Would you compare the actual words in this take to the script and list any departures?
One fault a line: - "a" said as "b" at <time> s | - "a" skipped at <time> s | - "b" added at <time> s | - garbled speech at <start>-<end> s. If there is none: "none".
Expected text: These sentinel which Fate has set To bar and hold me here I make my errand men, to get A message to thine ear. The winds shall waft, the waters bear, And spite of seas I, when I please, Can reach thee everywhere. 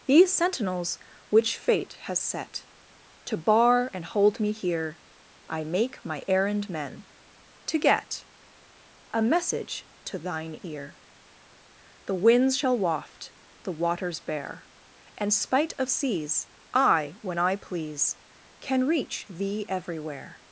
- "sentinel" said as "sentinels" at 0.3 s